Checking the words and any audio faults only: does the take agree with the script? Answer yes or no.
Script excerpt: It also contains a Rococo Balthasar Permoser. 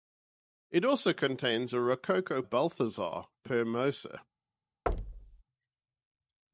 no